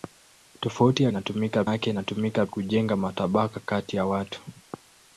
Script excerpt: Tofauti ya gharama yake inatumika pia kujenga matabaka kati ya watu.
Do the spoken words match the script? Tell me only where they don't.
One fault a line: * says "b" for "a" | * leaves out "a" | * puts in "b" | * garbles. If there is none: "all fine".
* says "inatumika" for "gharama"
* leaves out "pia"